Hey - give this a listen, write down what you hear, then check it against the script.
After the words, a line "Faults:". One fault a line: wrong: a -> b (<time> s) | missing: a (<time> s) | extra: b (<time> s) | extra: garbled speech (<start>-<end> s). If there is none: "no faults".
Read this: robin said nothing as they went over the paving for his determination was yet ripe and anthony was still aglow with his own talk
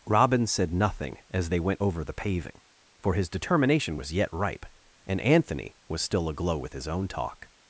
robin said nothing as they went over the paving for his determination was yet ripe and anthony was still aglow with his own talk
Faults:
no faults